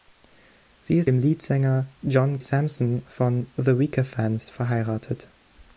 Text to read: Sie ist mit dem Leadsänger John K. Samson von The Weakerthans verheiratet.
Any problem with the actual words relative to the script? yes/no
yes